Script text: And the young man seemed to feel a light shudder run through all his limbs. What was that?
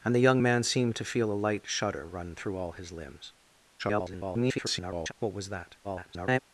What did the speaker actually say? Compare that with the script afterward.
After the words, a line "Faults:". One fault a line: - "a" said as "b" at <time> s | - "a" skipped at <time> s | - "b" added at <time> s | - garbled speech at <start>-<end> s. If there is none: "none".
And the young man seemed to feel a light shudder run through all his limbs. [garbled] What was that? [garbled]
Faults:
- garbled speech at 3.8-5.1 s
- garbled speech at 5.8-6.4 s